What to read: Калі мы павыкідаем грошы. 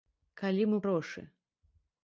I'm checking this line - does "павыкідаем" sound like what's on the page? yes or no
no